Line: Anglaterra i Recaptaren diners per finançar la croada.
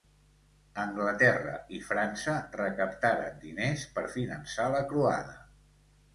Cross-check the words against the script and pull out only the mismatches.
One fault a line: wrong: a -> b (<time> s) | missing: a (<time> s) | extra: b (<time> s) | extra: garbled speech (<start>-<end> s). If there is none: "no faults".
extra: França (1.9 s)